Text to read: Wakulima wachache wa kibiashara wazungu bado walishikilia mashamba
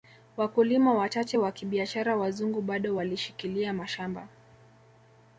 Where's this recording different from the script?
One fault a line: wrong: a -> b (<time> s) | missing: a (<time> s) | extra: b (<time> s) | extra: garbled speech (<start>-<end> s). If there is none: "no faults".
no faults